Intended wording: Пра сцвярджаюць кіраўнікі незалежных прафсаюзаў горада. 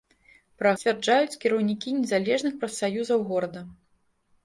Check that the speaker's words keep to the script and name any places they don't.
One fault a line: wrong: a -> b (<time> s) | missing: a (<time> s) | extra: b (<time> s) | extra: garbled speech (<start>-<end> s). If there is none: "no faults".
no faults